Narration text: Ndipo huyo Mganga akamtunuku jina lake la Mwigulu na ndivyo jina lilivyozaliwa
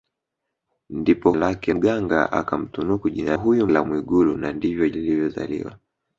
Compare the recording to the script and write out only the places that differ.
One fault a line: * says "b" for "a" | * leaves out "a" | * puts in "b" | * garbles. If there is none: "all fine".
* says "lake" for "huyo"
* says "huyo" for "lake"
* leaves out "jina"